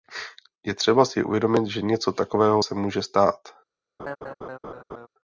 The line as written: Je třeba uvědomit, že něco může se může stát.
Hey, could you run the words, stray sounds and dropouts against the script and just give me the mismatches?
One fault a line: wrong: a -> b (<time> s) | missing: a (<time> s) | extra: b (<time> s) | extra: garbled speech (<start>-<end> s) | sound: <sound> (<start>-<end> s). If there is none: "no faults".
extra: si (1.1 s)
wrong: může -> takového (2.1 s)
sound: laugh (4.0-5.1 s)